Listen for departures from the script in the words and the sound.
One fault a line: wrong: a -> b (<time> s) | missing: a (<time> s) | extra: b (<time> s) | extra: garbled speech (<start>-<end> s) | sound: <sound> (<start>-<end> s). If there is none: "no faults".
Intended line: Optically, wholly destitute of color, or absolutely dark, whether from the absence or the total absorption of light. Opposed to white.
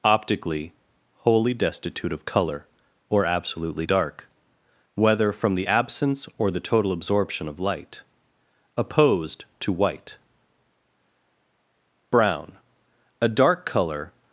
extra: BROWN A dark color (12.1 s)